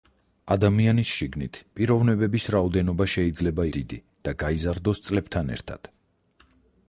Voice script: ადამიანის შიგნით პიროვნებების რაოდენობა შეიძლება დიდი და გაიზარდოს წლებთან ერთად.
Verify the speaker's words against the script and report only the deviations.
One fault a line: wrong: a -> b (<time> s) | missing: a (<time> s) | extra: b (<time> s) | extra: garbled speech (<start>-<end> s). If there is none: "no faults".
no faults